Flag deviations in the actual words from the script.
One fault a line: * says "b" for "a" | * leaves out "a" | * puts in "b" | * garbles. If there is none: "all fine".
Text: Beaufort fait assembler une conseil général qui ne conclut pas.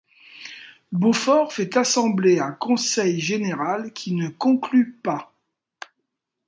* says "un" for "une"